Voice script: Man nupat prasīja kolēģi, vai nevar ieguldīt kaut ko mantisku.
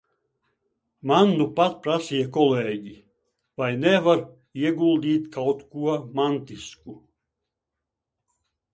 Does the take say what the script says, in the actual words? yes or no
yes